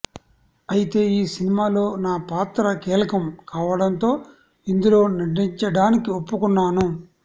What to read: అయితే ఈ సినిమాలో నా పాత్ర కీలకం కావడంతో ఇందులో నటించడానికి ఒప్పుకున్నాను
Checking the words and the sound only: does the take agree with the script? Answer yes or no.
yes